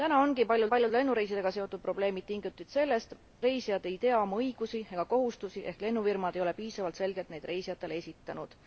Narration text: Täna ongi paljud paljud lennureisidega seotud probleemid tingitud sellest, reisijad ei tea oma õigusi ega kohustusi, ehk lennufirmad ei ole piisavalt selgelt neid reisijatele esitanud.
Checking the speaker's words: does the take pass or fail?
pass